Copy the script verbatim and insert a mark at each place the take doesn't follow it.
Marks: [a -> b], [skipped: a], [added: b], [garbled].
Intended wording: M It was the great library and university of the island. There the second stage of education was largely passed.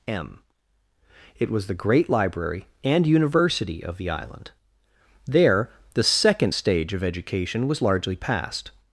M It was the great library and university of the island. There the second stage of education was largely passed.